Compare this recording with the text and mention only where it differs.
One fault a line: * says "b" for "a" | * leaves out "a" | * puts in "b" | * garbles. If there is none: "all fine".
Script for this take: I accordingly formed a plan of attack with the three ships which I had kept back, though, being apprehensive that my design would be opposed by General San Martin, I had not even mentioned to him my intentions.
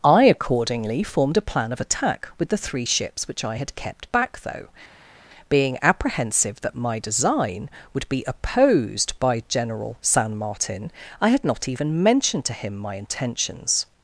all fine